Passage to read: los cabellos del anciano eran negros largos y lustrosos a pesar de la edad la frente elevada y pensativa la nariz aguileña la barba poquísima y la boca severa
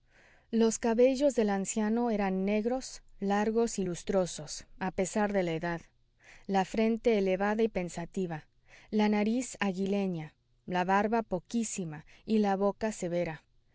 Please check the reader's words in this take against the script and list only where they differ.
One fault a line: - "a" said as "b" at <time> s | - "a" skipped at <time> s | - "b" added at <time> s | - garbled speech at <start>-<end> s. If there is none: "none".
none